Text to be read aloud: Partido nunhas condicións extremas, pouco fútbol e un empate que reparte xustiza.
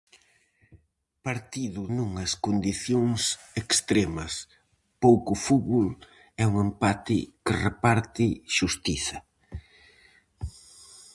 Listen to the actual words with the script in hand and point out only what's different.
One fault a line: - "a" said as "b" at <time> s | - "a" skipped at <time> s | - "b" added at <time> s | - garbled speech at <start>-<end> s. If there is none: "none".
none